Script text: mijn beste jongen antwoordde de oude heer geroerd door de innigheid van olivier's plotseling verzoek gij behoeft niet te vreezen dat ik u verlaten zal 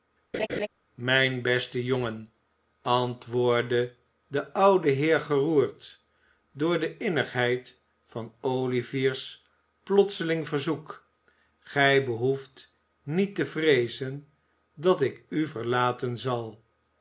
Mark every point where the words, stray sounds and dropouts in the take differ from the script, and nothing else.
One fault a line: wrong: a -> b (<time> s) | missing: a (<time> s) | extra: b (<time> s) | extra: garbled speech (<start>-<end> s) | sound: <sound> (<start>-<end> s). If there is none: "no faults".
sound: laugh (0.3-0.7 s)